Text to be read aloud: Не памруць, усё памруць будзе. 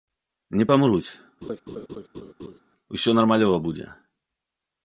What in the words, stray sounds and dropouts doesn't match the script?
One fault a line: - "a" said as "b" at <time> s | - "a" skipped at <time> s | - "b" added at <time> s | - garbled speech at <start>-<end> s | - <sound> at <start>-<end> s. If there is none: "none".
- laugh at 1.4-2.6 s
- "памруць" said as "нармалёва" at 3.2 s